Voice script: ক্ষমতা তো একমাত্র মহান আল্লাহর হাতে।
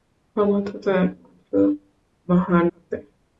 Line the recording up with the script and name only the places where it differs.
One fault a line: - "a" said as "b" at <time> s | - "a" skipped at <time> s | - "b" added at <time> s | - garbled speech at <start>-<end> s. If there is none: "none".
- "আল্লাহর" skipped at 2.7 s